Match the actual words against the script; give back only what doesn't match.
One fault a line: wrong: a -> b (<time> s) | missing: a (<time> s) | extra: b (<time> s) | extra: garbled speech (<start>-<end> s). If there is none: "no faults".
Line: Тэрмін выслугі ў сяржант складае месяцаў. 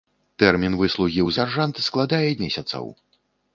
no faults